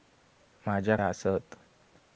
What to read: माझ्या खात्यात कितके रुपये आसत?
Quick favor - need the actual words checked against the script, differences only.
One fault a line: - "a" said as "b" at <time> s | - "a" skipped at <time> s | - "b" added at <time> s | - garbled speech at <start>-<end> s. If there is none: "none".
- "खात्यात कितके रुपये" skipped at 1.0 s